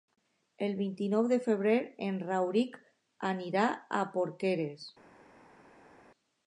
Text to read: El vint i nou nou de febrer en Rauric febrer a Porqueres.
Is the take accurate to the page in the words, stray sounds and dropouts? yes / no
no